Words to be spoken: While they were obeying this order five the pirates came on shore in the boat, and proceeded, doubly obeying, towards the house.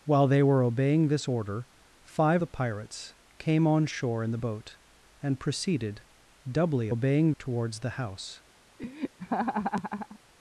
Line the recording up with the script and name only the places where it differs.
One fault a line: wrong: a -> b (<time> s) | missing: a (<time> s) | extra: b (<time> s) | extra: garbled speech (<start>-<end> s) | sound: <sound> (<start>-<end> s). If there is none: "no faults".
sound: laugh (8.8-10.2 s)